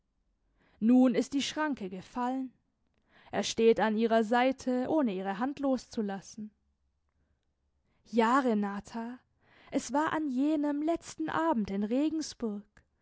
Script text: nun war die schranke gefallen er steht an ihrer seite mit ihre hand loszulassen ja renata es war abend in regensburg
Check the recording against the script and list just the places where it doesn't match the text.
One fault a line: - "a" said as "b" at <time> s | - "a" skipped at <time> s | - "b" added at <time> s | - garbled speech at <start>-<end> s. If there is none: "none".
- "war" said as "ist" at 1.1 s
- "mit" said as "ohne" at 4.9 s
- "an jenem letzten" added at 10.1 s